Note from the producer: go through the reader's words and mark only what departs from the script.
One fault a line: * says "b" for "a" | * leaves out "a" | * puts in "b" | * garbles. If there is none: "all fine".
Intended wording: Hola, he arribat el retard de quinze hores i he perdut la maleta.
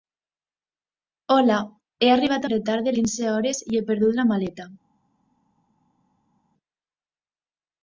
all fine